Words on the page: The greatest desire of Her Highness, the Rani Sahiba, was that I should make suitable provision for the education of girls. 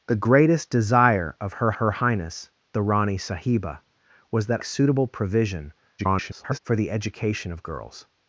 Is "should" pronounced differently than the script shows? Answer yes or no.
yes